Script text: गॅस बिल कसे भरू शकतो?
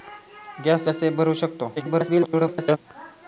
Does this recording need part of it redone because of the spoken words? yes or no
yes